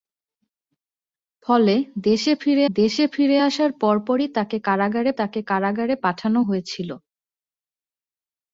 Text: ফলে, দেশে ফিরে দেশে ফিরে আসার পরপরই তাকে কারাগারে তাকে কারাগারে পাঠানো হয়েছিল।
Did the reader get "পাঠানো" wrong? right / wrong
right